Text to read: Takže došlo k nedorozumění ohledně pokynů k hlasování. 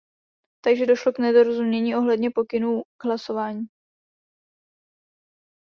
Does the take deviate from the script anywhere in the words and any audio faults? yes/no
no